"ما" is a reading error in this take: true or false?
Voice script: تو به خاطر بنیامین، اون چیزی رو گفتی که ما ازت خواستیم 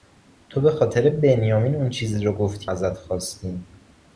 true